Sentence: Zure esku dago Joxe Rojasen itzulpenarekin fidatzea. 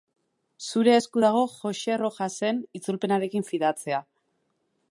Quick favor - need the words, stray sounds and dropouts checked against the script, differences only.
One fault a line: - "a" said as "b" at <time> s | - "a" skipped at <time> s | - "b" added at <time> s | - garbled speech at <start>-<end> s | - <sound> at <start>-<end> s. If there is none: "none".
none